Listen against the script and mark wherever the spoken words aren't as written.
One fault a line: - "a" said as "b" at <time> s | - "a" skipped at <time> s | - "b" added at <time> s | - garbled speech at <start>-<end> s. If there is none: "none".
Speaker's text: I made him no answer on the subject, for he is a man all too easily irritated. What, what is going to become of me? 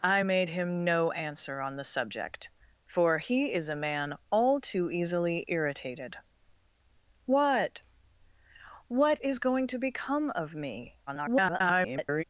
- garbled speech at 11.1-12.2 s